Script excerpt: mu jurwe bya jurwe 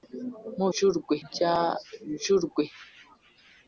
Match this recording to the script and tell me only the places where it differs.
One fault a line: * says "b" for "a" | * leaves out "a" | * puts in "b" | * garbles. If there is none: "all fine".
all fine